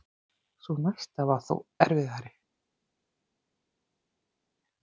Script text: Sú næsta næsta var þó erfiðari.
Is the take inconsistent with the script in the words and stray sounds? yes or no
yes